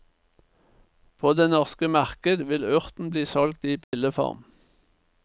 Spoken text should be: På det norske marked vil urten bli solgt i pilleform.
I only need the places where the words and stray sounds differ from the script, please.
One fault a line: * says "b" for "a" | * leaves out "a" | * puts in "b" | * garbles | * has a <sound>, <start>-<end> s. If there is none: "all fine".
* has a dropout, 3.8-3.9 s